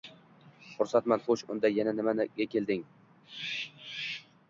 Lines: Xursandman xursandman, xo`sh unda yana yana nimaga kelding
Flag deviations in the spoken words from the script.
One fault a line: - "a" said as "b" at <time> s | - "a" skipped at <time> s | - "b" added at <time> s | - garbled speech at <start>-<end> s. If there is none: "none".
- "xursandman" skipped at 1.2 s
- "yana" skipped at 2.0 s